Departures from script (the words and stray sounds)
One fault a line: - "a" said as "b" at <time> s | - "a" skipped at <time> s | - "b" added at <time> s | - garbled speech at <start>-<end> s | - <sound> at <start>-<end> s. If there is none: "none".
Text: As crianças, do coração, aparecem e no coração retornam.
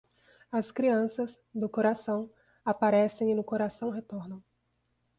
none